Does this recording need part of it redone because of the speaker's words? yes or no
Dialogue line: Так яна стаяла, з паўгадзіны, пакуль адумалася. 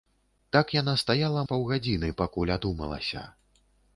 no